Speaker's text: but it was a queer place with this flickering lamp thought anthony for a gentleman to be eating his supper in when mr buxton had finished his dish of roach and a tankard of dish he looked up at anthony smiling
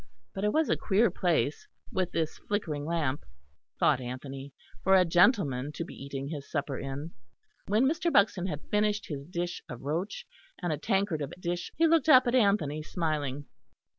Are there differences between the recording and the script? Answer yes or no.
no